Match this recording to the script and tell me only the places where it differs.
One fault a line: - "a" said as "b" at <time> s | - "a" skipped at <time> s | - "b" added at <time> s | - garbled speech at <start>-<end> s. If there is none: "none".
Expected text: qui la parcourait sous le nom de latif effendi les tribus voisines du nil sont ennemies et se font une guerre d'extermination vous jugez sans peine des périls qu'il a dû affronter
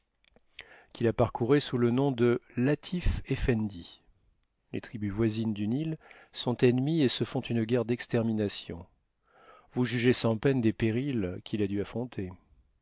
none